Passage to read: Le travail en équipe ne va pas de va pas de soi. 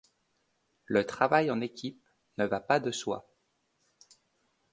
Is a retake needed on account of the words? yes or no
yes